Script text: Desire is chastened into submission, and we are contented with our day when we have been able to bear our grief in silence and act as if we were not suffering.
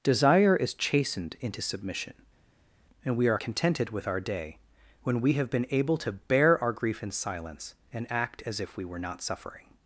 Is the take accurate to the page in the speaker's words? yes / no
yes